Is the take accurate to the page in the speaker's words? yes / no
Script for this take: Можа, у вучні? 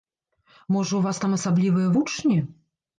no